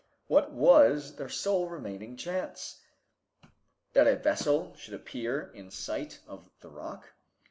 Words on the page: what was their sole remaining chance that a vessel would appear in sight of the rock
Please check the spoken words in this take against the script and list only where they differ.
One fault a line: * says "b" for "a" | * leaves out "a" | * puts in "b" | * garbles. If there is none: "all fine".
* says "should" for "would"